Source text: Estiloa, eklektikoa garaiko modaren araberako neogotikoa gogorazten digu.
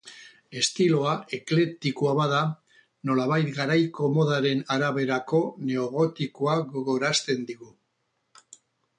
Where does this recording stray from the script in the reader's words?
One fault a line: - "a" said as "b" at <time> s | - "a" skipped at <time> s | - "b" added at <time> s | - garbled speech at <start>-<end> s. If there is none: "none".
- "bada nolabait" added at 2.2 s